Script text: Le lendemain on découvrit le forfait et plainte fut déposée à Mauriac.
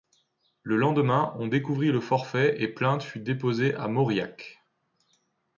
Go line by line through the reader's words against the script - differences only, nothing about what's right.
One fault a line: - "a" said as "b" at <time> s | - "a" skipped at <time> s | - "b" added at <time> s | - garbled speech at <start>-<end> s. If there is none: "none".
none